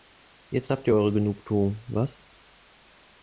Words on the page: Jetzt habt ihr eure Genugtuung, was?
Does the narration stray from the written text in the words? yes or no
no